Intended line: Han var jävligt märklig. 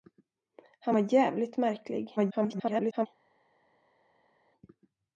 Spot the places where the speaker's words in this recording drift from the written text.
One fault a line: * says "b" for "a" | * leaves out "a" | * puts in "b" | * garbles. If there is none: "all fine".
* garbles